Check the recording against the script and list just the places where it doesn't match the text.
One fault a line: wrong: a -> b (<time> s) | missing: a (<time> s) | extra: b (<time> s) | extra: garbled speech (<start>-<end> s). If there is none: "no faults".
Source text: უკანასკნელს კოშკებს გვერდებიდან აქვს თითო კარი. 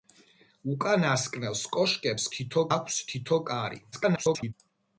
wrong: გვერდებიდან -> თითო (2.4 s)
extra: garbled speech (3.9-4.5 s)